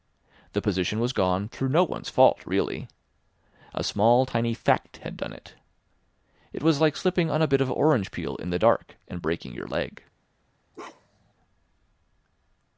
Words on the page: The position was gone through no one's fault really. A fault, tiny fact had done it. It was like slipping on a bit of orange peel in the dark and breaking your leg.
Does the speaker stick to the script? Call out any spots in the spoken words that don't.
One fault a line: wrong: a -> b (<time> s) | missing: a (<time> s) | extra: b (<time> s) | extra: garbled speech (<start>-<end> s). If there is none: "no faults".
wrong: fault -> small (3.8 s)